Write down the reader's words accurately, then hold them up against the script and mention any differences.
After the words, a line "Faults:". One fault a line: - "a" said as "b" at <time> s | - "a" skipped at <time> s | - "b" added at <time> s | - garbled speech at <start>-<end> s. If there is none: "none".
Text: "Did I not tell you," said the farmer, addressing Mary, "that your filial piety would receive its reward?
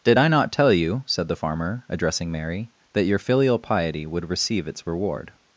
"Did I not tell you," said the farmer, addressing Mary, "that your filial piety would receive its reward?
Faults:
none